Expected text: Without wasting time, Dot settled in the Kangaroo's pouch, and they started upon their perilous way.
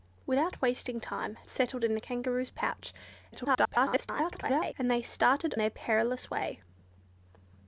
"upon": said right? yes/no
no